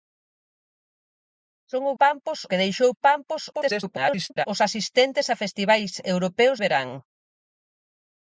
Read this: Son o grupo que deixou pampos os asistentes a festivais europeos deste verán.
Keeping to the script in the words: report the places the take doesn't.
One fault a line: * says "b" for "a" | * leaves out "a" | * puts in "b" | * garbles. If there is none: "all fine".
* says "pampos" for "grupo"
* garbles
* leaves out "deste"